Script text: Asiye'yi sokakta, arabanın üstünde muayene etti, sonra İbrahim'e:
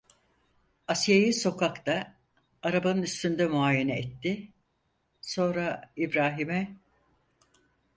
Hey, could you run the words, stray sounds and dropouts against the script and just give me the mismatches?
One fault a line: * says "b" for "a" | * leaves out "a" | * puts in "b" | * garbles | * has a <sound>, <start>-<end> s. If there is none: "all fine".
all fine